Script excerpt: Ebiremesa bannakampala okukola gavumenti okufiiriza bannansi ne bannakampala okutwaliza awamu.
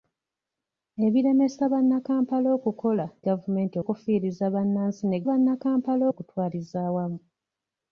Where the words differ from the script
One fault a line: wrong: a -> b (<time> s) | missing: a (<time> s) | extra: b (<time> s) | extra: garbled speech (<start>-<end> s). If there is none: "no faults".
no faults